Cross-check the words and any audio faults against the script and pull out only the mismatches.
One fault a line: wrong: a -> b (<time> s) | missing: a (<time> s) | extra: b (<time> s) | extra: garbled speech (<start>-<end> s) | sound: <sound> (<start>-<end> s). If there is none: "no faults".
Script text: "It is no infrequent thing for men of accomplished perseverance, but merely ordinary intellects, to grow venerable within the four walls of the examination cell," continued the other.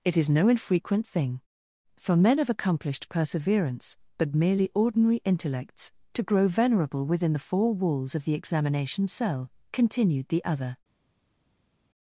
no faults